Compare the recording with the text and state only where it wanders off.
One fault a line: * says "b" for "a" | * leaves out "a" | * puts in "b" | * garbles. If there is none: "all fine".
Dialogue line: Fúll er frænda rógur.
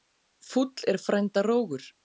all fine